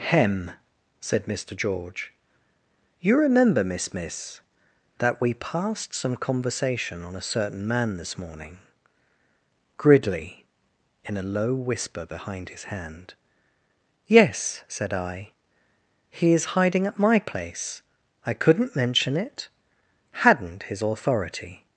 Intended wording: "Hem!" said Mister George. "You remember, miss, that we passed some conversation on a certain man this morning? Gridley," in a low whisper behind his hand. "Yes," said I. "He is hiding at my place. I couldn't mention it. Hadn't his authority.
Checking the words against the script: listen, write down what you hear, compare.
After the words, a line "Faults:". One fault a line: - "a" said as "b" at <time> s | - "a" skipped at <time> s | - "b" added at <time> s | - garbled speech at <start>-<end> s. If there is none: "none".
"Hem!" said Mister George. "You remember, miss miss, that we passed some conversation on a certain man this morning? Gridley," in a low whisper behind his hand. "Yes," said I. "He is hiding at my place. I couldn't mention it. Hadn't his authority.
Faults:
- "miss" added at 3.9 s